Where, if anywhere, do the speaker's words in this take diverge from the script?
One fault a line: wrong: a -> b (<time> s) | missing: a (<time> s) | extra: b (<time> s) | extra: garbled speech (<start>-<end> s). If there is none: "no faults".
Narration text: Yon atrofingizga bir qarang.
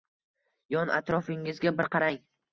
no faults